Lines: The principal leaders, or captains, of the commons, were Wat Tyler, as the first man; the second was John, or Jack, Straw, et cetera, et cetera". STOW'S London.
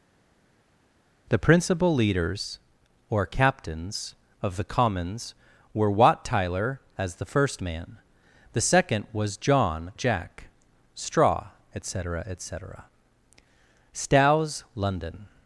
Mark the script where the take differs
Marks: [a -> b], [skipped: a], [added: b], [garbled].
The principal leaders, or captains, of the commons, were Wat Tyler, as the first man; the second was John, [skipped: or] Jack, Straw, et cetera, et cetera". STOW'S London.